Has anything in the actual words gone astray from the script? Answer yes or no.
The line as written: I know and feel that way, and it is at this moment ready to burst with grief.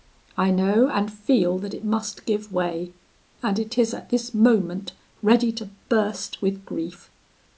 yes